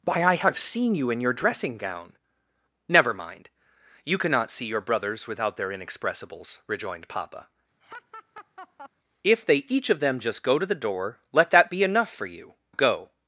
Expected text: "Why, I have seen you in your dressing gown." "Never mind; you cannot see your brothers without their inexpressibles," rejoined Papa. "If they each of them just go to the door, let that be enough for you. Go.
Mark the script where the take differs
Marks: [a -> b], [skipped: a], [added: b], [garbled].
"Why, I have seen you in your dressing gown." "Never mind; you cannot see your brothers without their inexpressibles," rejoined Papa. "If they each of them just go to the door, let that be enough for you. Go.